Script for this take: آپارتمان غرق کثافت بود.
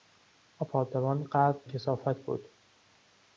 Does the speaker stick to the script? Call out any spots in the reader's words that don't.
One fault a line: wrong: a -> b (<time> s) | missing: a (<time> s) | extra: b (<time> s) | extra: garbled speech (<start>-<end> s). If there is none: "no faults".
no faults